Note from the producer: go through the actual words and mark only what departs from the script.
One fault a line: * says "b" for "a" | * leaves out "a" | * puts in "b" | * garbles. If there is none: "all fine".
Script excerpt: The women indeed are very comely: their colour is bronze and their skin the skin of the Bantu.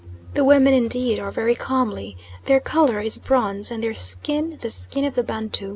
all fine